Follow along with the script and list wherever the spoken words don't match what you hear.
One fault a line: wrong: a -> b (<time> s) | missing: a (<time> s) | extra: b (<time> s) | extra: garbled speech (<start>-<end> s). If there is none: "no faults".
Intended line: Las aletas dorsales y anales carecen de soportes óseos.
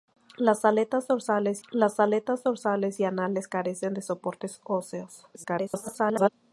extra: las aletas dorsales (1.7 s)
extra: garbled speech (5.3-6.3 s)